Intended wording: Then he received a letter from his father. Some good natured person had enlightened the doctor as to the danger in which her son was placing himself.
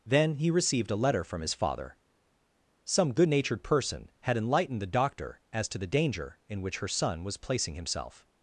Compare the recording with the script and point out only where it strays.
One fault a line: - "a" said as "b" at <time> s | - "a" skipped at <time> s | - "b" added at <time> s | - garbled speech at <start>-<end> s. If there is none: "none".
none